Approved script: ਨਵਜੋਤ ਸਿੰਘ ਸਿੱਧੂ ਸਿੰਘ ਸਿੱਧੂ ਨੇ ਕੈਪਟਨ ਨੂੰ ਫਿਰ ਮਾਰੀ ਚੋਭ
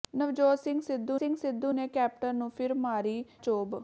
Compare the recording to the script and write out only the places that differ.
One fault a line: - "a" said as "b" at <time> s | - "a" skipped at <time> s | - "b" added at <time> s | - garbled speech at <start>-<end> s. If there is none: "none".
none